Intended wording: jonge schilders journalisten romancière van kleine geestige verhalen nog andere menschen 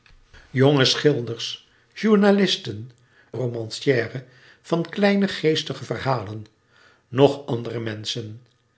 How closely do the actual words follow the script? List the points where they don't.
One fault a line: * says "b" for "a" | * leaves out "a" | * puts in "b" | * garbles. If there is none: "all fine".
all fine